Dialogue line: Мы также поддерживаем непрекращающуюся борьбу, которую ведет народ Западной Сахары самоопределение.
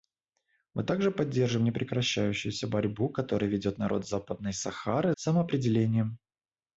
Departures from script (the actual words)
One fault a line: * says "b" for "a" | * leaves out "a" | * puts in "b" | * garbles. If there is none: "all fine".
all fine